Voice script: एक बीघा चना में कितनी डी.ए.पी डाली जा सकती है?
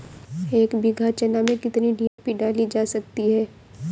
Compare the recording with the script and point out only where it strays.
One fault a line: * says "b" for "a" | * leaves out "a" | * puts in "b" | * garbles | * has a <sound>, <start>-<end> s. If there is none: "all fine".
* has a dropout, 2.1-2.2 s